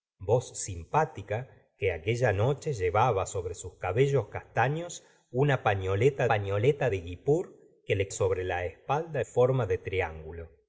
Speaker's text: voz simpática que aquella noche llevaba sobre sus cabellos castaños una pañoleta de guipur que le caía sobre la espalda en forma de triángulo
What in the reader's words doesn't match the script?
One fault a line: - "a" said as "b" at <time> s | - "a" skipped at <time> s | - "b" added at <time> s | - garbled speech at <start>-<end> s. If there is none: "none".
- "pañoleta" added at 6.3 s
- "caía" skipped at 8.1 s
- "en" skipped at 9.2 s